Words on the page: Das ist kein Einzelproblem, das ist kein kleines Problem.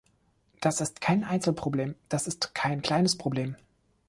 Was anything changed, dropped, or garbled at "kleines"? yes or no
no